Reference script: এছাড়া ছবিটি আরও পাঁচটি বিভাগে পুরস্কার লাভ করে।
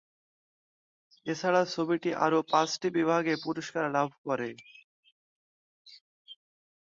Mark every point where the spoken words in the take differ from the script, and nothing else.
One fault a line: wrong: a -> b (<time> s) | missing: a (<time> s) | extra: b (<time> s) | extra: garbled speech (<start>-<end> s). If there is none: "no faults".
no faults